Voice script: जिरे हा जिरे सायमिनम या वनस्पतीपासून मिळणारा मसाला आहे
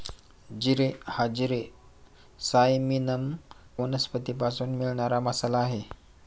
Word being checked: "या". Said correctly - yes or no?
no